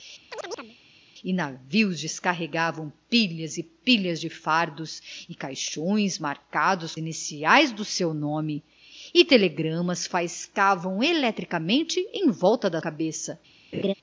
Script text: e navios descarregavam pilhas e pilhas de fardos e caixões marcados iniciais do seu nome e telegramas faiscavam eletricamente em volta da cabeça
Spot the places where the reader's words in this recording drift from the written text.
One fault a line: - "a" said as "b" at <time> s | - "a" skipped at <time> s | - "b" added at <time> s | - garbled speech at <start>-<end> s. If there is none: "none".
none